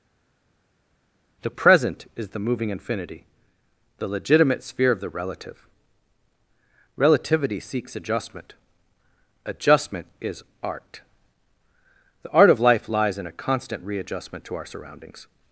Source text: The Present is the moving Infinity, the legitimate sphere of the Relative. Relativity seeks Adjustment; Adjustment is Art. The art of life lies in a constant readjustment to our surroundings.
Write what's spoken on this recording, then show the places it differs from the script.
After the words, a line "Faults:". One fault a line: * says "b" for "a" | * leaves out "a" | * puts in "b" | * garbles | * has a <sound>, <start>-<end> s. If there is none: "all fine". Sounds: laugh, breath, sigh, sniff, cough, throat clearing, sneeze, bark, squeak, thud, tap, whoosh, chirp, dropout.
The Present is the moving Infinity, the legitimate sphere of the Relative. Relativity seeks Adjustment; Adjustment is Art. The art of life lies in a constant readjustment to our surroundings.
Faults:
all fine